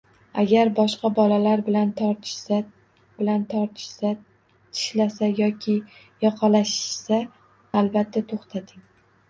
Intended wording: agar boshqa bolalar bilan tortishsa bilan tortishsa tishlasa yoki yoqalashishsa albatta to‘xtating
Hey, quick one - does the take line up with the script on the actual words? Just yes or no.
yes